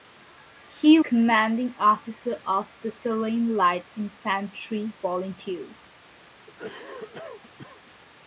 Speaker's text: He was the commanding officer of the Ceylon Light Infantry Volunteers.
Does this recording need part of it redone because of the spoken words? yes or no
yes